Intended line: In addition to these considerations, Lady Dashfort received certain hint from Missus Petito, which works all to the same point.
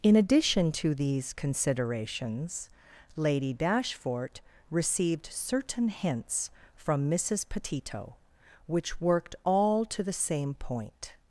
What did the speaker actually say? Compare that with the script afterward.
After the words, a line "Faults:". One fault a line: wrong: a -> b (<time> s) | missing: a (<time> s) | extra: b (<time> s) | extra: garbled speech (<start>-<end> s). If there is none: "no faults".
In addition to these considerations, Lady Dashfort received certain hints from Missus Petito, which worked all to the same point.
Faults:
wrong: hint -> hints (5.9 s)
wrong: works -> worked (9.0 s)